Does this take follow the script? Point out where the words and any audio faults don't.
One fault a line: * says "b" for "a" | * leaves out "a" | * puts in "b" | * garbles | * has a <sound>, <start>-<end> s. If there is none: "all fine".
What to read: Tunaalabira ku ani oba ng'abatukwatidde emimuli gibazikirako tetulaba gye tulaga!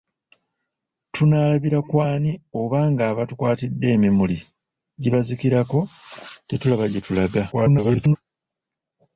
* garbles